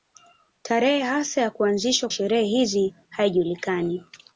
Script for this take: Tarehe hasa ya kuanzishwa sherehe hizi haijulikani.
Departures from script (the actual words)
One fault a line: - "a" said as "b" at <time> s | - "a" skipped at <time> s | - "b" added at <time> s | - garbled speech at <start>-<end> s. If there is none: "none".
none